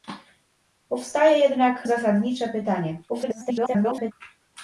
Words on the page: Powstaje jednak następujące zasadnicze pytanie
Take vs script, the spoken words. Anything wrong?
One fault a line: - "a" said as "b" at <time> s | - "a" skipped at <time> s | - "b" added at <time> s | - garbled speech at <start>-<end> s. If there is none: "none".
- "następujące" skipped at 1.9 s
- garbled speech at 3.1-4.1 s